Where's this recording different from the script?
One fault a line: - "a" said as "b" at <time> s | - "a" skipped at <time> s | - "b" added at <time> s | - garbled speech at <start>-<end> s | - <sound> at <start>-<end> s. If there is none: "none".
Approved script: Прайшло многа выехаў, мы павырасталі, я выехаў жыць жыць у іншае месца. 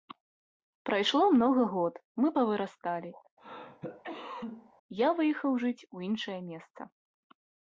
- "выехаў" said as "год" at 1.7 s
- cough at 3.4-4.7 s
- "жыць" skipped at 5.9 s